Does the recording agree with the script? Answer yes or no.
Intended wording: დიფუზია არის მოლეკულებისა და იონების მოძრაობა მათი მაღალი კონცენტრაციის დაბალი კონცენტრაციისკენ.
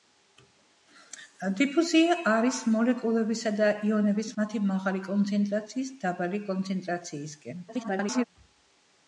no